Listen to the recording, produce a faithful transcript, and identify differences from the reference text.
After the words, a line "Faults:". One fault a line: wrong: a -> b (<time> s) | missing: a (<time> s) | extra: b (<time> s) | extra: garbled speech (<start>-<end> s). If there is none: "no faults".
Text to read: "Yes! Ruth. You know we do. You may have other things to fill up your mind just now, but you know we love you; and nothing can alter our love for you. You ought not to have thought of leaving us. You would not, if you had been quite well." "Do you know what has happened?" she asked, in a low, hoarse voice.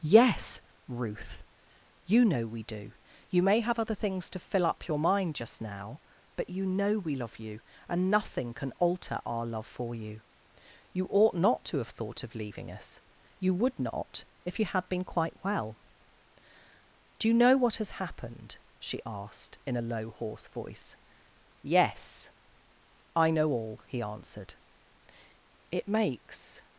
"Yes! Ruth. You know we do. You may have other things to fill up your mind just now, but you know we love you; and nothing can alter our love for you. You ought not to have thought of leaving us. You would not, if you had been quite well." "Do you know what has happened?" she asked, in a low, hoarse voice. "Yes. I know all," he answered. "It makes
Faults:
extra: Yes I know all he answered It makes (21.6 s)